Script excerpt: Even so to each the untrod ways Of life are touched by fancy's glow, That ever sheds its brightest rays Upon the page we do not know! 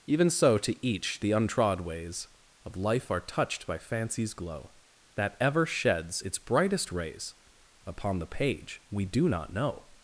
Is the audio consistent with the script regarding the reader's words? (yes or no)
yes